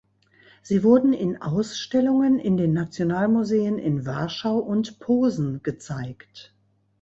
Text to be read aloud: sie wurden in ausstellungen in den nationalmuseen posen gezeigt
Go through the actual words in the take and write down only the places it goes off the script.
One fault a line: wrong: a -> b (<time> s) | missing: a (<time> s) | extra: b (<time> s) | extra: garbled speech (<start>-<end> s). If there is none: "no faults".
extra: in warschau und (3.8 s)